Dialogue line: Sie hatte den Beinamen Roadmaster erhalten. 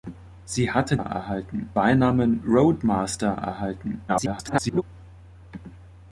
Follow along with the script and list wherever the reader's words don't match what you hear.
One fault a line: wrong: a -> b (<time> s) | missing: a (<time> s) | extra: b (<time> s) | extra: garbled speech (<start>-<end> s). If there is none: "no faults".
wrong: den -> erhalten (0.9 s)
extra: garbled speech (4.1-4.8 s)